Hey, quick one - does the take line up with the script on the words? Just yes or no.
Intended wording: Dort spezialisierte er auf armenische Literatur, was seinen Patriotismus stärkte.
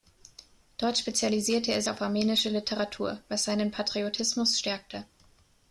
yes